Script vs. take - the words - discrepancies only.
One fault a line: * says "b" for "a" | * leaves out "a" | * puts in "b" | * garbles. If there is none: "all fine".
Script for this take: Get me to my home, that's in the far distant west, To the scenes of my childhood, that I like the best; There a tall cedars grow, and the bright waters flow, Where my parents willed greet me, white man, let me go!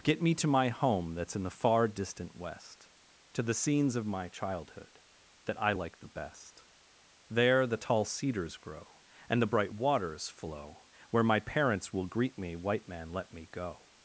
* says "the" for "a"
* says "will" for "willed"